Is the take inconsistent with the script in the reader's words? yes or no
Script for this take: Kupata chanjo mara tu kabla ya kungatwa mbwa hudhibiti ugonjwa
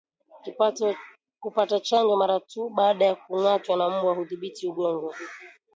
yes